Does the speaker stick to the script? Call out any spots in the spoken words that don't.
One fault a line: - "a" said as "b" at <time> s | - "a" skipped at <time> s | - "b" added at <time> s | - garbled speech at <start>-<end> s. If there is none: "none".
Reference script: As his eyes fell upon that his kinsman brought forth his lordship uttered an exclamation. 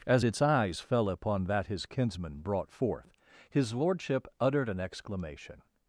- "his" said as "its" at 0.2 s